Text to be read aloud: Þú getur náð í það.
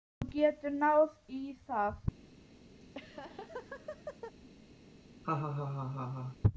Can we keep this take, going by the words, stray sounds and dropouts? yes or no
no